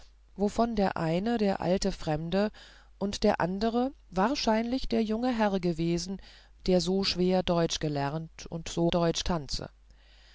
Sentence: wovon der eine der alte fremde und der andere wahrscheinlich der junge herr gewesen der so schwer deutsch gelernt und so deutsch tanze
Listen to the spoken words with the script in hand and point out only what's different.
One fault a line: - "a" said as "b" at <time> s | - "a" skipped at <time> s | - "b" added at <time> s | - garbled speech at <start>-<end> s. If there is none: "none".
none